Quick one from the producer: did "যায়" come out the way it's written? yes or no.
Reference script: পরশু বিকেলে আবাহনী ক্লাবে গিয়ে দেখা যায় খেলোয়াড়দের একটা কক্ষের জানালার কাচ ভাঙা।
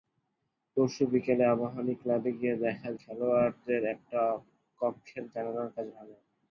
no